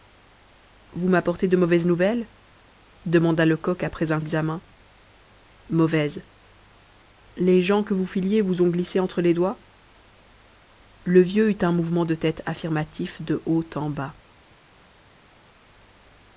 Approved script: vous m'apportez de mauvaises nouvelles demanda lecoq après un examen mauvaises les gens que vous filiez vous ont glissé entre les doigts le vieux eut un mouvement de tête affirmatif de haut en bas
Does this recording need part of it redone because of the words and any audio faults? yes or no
no